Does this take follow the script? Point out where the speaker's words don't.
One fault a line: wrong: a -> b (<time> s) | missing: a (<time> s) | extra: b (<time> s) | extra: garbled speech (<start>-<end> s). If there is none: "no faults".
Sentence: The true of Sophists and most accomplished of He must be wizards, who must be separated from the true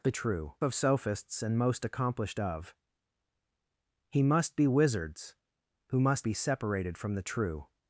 no faults